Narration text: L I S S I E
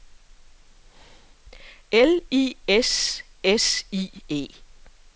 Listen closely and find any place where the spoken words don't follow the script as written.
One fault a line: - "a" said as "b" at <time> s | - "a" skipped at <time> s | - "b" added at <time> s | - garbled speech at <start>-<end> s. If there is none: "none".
none